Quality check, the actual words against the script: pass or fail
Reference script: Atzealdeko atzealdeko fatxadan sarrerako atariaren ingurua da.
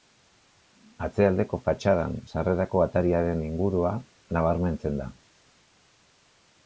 fail